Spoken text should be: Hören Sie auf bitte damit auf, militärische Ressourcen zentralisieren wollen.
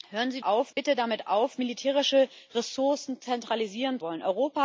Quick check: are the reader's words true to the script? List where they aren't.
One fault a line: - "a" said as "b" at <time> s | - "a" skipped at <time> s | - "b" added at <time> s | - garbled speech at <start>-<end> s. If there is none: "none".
none